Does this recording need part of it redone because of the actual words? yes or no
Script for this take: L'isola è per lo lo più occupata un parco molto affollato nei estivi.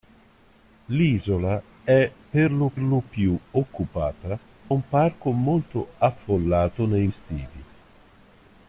no